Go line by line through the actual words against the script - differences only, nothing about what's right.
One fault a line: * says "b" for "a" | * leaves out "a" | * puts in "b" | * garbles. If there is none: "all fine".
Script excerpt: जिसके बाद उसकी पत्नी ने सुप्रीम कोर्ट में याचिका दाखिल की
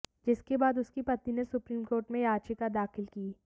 all fine